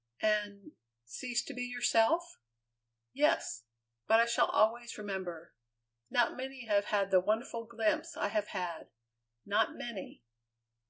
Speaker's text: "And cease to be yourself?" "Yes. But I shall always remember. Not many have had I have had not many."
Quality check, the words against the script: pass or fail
fail